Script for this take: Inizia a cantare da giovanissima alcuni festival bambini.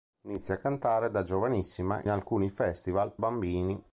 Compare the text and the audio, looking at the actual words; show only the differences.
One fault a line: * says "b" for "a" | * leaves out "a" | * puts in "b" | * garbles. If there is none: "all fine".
all fine